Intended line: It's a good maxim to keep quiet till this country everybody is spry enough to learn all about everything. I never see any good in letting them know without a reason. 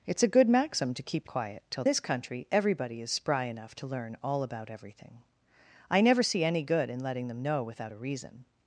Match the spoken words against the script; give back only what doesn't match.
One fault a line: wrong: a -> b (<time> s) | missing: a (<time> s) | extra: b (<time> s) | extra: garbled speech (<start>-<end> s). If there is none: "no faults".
no faults